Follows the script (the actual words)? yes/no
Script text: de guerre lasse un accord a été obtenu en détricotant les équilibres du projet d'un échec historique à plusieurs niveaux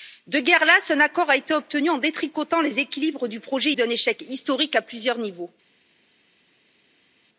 yes